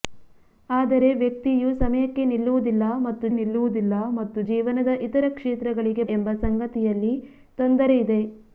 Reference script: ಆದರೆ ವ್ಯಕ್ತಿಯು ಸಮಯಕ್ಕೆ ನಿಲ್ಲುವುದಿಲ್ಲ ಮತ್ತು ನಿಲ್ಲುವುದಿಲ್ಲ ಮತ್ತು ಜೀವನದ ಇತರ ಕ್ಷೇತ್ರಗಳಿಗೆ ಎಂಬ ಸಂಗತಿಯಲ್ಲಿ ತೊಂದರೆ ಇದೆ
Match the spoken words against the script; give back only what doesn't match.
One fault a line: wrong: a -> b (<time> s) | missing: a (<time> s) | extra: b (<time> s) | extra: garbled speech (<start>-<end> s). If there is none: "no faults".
no faults